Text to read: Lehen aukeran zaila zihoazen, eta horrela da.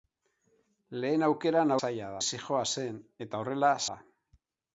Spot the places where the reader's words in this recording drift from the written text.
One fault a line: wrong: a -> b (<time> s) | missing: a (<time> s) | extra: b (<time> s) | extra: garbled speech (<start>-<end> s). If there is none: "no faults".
no faults